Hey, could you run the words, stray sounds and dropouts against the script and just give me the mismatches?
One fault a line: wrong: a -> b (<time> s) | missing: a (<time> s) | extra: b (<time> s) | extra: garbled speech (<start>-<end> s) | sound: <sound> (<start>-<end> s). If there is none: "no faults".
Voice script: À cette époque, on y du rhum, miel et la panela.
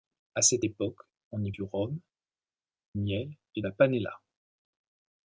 no faults